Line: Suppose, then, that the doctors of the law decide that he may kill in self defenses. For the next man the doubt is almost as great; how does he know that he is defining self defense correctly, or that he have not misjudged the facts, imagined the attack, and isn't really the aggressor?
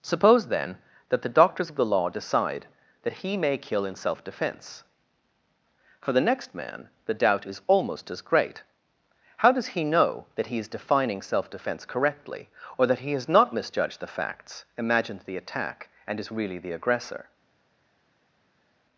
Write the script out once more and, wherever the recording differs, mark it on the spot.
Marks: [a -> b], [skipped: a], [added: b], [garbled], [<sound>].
Suppose, then, that the doctors of the law decide that he may kill in self [defenses. -> defense] For the next man the doubt is almost as great; how does he know that he is defining self defense correctly, or that he [have -> has] not misjudged the facts, imagined the attack, and [isn't -> is] really the aggressor?